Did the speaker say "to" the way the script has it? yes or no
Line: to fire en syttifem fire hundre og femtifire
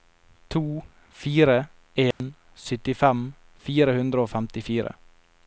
yes